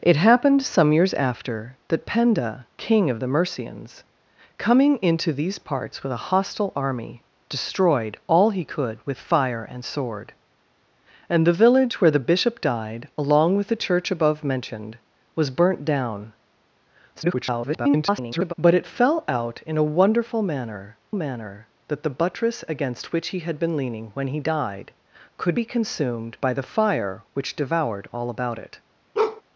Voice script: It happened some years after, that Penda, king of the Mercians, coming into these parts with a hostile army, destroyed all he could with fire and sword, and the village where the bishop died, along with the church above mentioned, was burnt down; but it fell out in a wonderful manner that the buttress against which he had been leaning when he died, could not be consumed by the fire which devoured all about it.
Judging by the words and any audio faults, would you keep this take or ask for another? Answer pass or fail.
fail